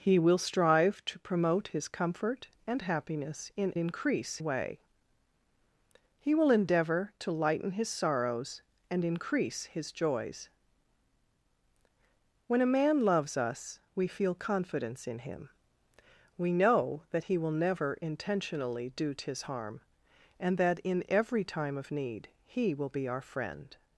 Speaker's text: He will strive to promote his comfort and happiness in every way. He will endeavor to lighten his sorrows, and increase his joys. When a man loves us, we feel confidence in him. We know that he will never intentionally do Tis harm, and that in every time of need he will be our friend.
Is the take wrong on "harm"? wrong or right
right